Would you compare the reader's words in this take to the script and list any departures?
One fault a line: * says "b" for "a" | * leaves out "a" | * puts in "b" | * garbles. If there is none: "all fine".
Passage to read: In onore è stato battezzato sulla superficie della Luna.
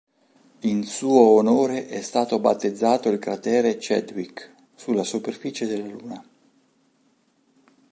* puts in "suo"
* puts in "il cratere Chadwick"